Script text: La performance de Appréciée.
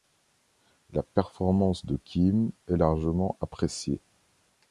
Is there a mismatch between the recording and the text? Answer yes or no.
yes